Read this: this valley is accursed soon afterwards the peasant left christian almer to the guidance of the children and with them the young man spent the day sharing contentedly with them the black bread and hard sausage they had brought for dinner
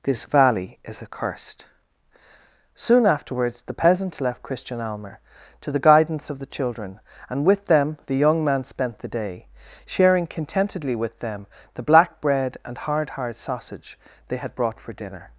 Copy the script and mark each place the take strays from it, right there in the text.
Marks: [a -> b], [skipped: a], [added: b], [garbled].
this valley is accursed soon afterwards the peasant left christian almer to the guidance of the children and with them the young man spent the day sharing contentedly with them the black bread and hard [added: hard] sausage they had brought for dinner